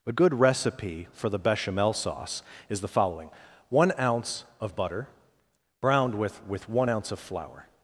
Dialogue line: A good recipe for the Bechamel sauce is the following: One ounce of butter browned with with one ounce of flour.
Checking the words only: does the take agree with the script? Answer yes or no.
yes